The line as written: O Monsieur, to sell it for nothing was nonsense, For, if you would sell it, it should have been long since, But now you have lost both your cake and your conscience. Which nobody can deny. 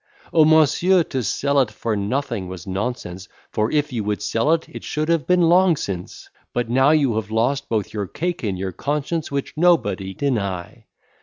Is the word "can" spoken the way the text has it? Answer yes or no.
no